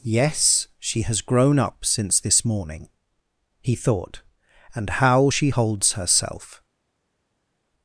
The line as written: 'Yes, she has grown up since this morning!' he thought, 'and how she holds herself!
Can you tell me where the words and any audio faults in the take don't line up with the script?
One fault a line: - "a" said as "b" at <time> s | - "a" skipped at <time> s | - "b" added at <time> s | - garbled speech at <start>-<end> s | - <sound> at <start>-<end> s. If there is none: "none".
none